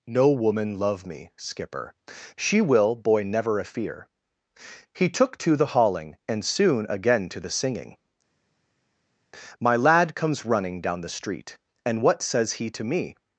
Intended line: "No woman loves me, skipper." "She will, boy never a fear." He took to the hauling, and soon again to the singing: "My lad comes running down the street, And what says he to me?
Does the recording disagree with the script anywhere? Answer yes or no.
yes